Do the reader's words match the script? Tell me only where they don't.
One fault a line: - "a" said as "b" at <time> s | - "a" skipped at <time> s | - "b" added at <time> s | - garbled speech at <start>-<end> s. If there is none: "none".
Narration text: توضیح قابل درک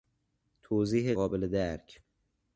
none